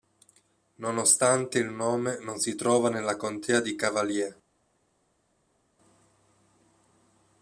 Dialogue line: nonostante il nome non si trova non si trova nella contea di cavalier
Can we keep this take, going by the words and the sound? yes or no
no